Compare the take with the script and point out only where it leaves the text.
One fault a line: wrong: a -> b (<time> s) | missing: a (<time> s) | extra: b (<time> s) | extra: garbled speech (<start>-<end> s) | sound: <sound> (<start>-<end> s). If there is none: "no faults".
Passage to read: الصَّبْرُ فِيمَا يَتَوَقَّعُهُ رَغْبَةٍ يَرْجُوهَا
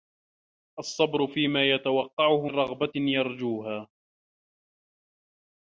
no faults